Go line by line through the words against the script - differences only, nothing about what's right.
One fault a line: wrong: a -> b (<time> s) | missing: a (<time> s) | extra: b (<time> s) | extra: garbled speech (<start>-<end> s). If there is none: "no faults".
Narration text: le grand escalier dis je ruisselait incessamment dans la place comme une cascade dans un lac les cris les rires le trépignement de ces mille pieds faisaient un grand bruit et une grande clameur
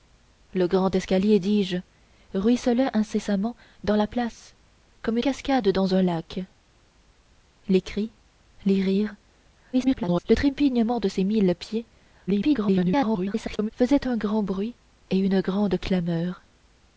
missing: une (5.2 s)
extra: garbled speech (9.7-10.2 s)
extra: garbled speech (12.3-13.7 s)